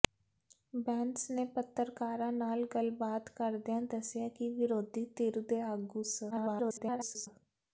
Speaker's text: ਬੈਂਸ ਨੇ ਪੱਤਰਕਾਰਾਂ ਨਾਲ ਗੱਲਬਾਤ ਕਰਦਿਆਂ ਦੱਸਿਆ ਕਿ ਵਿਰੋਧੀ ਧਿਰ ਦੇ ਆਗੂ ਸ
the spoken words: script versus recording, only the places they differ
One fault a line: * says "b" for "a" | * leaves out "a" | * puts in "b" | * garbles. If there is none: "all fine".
* garbles